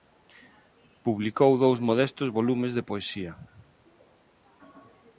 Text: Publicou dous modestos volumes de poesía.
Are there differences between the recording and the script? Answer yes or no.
no